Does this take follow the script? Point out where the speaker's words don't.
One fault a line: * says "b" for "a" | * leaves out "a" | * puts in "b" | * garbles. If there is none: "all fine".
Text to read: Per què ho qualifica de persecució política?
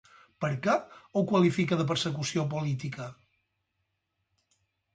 all fine